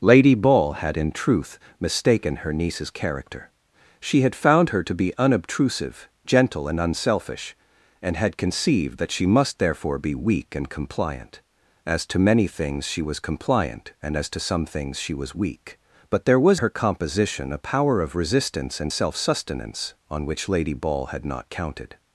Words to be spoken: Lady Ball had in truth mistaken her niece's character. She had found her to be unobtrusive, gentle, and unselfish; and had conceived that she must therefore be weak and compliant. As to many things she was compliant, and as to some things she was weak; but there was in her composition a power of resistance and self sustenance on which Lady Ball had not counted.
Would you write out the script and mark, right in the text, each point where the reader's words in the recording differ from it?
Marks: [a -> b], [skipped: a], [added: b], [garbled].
Lady Ball had in truth mistaken her niece's character. She had found her to be unobtrusive, gentle, and unselfish; and had conceived that she must therefore be weak and compliant. As to many things she was compliant, and as to some things she was weak; but there was [skipped: in] her composition a power of resistance and self sustenance on which Lady Ball had not counted.